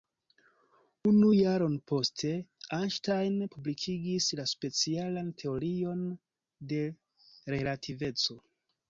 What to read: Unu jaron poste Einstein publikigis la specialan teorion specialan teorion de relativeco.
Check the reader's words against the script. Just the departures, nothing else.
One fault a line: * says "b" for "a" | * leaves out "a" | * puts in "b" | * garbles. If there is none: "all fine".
* leaves out "specialan teorion"